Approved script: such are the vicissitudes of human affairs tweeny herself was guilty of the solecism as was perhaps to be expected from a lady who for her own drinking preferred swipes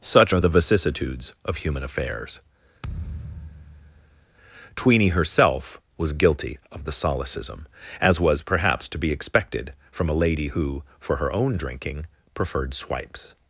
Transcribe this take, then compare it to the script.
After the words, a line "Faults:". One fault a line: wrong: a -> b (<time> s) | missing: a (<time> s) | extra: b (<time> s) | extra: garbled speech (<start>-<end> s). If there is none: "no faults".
such are the vicissitudes of human affairs tweeny herself was guilty of the solecism as was perhaps to be expected from a lady who for her own drinking preferred swipes
Faults:
no faults